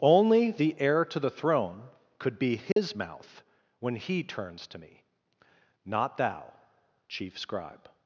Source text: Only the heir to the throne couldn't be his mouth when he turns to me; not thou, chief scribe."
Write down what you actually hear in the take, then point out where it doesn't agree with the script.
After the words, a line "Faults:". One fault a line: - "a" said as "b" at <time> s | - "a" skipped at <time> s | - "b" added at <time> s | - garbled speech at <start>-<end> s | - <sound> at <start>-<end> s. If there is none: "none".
Only the heir to the throne could be his mouth when he turns to me; not thou, chief scribe."
Faults:
- "couldn't" said as "could" at 2.2 s
- dropout at 2.7-2.8 s